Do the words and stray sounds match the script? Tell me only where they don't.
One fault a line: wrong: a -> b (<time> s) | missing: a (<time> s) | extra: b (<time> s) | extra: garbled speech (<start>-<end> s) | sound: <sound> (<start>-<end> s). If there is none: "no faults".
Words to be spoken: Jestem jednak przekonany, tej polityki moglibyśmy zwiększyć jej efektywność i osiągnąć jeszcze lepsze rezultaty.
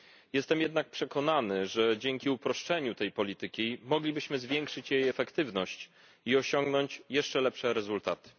extra: że dzięki uproszczeniu (1.6 s)